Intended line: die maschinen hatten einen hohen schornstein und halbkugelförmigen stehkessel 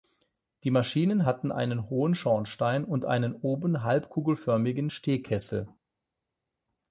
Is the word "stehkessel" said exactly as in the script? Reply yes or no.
yes